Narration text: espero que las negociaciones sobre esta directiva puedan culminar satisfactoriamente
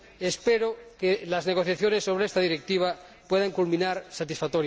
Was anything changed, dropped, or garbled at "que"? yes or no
no